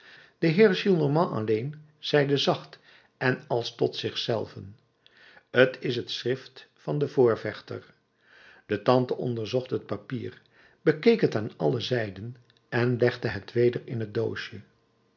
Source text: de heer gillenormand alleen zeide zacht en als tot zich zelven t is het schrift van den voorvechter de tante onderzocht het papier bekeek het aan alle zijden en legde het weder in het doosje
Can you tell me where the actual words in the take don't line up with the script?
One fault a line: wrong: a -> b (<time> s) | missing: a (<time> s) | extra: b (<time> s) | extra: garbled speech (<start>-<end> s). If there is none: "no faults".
no faults